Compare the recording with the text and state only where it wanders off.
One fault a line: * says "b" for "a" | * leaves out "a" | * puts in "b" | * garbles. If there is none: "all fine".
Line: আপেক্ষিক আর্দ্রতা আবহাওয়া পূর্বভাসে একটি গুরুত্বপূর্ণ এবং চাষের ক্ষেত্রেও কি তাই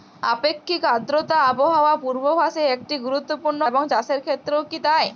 all fine